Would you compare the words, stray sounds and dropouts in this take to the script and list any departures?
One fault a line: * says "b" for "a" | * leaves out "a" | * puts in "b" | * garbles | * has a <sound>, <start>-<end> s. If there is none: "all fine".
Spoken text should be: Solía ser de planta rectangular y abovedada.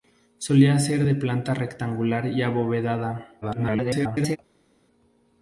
* garbles